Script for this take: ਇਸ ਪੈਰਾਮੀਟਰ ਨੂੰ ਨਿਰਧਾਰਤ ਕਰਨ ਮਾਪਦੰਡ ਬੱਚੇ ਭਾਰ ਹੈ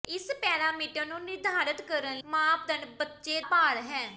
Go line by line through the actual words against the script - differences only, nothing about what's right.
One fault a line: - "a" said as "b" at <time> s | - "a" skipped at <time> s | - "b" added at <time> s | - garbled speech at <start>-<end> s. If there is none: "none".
none